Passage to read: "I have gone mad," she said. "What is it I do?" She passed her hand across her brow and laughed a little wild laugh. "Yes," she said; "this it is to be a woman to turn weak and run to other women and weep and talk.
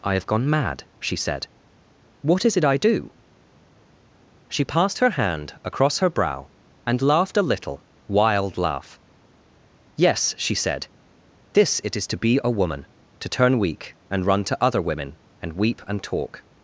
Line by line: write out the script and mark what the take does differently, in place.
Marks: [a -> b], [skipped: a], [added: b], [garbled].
"I have gone mad," she said. "What is it I do?" She passed her hand across her brow and laughed a little wild laugh. "Yes," she said; "this it is to be a woman to turn weak and run to other women and weep and talk.